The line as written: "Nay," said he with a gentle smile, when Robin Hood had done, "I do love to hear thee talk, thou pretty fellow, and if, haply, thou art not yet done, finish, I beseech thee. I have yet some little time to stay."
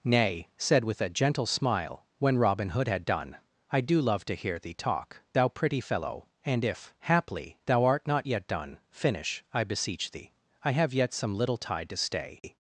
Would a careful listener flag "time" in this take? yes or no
yes